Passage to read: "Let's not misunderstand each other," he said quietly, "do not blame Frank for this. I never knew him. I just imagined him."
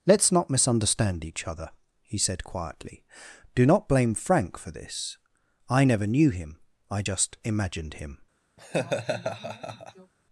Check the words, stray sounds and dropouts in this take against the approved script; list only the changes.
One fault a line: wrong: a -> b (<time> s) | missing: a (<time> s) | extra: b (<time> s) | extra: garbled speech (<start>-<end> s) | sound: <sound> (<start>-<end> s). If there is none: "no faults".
sound: laugh (8.6-10.1 s)